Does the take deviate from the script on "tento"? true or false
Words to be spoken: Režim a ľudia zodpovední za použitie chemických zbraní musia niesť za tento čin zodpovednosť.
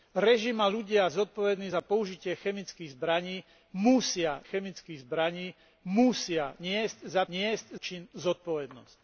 true